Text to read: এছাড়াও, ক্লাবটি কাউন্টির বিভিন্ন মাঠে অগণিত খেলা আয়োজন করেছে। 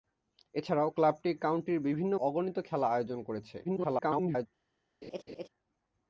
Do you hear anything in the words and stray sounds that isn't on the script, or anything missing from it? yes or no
yes